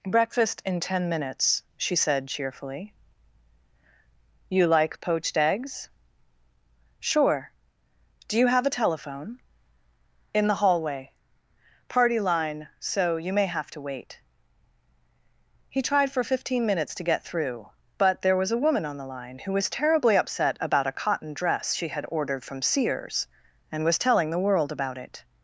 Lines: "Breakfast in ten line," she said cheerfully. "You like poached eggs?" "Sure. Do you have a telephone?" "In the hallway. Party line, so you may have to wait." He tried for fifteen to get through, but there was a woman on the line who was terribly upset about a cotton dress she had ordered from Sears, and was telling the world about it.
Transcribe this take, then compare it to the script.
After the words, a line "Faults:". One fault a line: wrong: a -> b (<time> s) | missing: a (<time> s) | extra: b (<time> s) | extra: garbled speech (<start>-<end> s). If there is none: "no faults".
"Breakfast in ten minutes," she said cheerfully. "You like poached eggs?" "Sure. Do you have a telephone?" "In the hallway. Party line, so you may have to wait." He tried for fifteen minutes to get through, but there was a woman on the line who was terribly upset about a cotton dress she had ordered from Sears, and was telling the world about it.
Faults:
wrong: line -> minutes (1.1 s)
extra: minutes (16.6 s)